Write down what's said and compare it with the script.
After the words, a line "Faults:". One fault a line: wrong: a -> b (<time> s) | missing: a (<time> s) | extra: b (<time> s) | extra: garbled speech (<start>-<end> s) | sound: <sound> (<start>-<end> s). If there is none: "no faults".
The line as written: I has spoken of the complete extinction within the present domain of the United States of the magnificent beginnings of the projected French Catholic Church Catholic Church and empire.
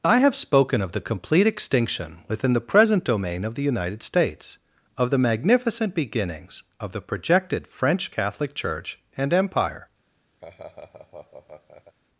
I have spoken of the complete extinction within the present domain of the United States of the magnificent beginnings of the projected French Catholic Church and empire.
Faults:
wrong: has -> have (0.2 s)
missing: Catholic Church (9.0 s)
sound: laugh (10.4-12.0 s)